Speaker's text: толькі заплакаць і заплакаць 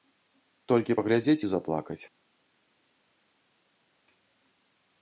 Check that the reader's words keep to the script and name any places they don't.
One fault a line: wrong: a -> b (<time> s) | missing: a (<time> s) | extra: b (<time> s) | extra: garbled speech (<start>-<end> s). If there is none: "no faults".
wrong: заплакаць -> паглядзець (1.0 s)